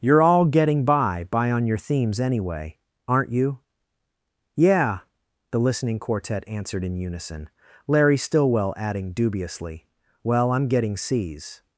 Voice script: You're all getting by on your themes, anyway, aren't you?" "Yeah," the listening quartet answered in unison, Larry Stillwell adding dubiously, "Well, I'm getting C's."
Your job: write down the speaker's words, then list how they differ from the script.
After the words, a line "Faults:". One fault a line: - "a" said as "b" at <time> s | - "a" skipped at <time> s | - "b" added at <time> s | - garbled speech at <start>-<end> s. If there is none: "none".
You're all getting by by on your themes, anyway, aren't you?" "Yeah," the listening quartet answered in unison, Larry Stillwell adding dubiously, "Well, I'm getting C's."
Faults:
- "by" added at 1.3 s